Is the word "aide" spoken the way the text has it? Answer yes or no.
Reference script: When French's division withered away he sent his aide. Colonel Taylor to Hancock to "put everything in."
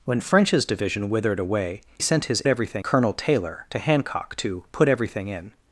no